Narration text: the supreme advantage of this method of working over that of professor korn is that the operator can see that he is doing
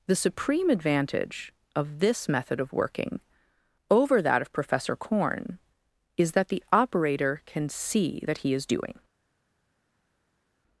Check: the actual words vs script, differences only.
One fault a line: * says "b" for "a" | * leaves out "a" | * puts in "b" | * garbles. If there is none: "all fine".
all fine